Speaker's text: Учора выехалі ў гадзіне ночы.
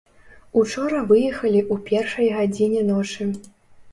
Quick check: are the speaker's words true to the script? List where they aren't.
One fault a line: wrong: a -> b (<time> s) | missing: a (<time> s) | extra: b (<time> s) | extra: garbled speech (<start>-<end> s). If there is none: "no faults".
extra: першай (1.9 s)